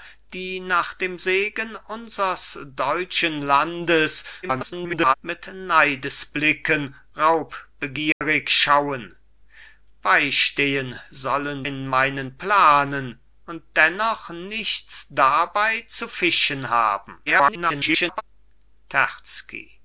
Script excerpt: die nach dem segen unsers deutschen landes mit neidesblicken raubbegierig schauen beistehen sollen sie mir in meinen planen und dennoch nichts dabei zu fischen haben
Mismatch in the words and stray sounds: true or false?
true